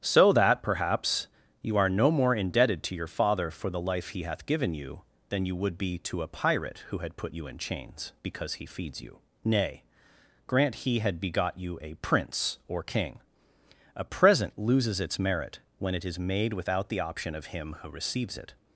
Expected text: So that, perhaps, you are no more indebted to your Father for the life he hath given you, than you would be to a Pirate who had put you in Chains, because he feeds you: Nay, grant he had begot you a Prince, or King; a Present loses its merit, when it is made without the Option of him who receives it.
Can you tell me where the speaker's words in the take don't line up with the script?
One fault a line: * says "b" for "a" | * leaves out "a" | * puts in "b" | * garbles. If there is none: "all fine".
all fine